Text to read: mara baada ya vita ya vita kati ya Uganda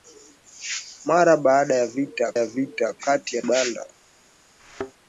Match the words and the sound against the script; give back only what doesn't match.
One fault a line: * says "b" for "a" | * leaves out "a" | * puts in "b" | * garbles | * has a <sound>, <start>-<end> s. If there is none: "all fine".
* has a thud, 4.6-4.9 s